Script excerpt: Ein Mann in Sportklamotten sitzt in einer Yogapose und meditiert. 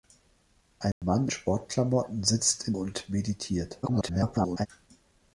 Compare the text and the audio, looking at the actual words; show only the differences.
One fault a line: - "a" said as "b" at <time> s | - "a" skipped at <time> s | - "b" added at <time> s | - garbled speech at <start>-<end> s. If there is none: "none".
- "in" skipped at 1.3 s
- "einer Yogapose" skipped at 2.8 s
- garbled speech at 3.8-4.7 s